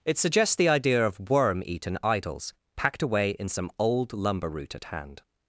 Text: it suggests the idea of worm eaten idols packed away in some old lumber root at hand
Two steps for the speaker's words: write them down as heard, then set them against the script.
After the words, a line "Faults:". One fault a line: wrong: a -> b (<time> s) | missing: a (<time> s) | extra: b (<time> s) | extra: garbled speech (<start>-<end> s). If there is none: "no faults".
it suggests the idea of worm eaten idols packed away in some old lumber root at hand
Faults:
no faults